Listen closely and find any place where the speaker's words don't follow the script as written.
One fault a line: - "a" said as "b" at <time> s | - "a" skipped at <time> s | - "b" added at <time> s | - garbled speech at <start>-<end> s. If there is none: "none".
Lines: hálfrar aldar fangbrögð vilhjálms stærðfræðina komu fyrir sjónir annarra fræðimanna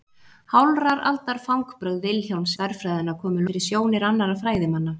none